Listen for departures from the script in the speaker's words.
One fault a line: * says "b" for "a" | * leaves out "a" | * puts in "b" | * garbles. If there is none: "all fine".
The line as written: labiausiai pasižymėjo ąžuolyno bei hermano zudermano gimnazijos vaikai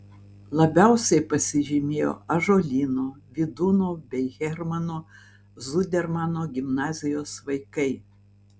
* puts in "vydūno"